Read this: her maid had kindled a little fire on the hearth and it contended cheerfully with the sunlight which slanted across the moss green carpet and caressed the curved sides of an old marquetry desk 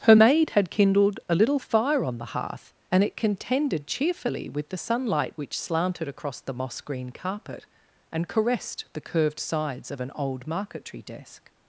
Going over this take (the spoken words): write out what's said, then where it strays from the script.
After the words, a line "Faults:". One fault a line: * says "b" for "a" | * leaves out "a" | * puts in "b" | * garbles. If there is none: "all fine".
her maid had kindled a little fire on the hearth and it contended cheerfully with the sunlight which slanted across the moss green carpet and caressed the curved sides of an old marquetry desk
Faults:
all fine